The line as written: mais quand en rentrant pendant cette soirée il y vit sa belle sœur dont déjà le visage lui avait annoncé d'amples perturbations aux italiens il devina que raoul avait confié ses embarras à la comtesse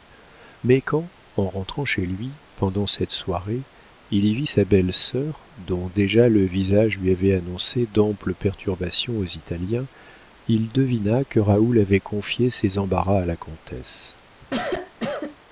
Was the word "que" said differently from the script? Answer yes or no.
no